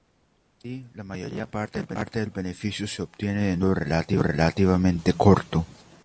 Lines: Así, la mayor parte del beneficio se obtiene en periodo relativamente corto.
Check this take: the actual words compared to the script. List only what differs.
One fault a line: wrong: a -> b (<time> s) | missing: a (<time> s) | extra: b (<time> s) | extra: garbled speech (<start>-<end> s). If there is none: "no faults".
extra: un (3.6 s)